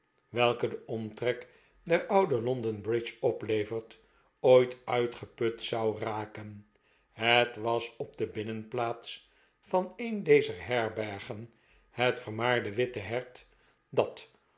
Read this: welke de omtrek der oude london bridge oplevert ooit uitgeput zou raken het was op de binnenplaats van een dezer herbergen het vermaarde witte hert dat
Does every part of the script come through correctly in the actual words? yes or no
yes